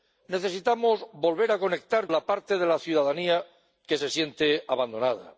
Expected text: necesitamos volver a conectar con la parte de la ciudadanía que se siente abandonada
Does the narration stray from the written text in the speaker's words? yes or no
yes